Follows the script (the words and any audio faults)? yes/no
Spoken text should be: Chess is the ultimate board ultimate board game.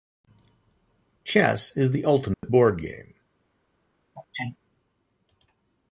no